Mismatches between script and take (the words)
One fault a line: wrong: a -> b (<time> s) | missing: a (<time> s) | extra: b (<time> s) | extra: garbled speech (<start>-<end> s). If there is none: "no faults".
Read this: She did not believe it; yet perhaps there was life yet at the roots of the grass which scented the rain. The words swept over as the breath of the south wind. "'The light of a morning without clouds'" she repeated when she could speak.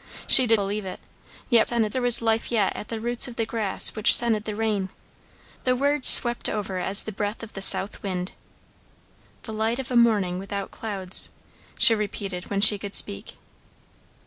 missing: not (0.6 s)
wrong: perhaps -> scented (1.6 s)